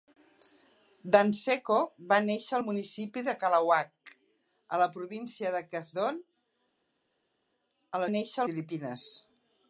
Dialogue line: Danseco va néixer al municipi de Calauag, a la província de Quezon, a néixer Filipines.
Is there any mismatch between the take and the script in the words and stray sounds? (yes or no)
no